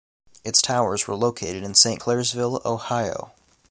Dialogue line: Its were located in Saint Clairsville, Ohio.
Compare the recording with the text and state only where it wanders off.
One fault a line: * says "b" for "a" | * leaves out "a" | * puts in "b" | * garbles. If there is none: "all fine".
* puts in "towers"